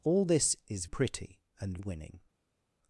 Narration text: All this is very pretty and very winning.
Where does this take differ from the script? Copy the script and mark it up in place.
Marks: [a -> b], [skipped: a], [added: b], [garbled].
All this is [skipped: very] pretty and [skipped: very] winning.